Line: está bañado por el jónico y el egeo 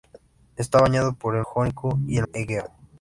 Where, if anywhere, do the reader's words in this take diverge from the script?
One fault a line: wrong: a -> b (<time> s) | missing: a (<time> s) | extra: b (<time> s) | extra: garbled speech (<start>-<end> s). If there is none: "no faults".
no faults